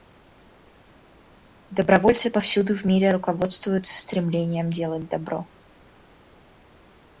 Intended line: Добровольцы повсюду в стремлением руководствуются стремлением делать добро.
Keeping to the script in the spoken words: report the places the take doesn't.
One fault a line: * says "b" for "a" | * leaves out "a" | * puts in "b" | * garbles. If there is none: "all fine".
* says "мире" for "стремлением"